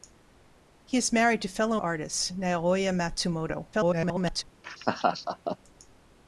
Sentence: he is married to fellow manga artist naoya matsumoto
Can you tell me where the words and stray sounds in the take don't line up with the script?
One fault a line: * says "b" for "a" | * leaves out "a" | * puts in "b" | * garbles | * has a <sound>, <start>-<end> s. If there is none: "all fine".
* leaves out "manga"
* garbles
* has a laugh, 4.6-5.6 s